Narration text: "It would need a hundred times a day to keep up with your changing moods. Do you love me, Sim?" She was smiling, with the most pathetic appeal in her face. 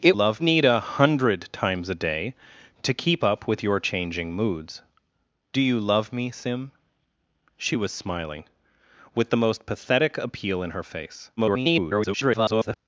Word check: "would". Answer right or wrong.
wrong